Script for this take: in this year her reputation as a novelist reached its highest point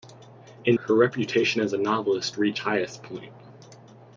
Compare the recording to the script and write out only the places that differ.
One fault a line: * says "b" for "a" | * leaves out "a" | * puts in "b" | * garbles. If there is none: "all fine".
* leaves out "this year"
* leaves out "its"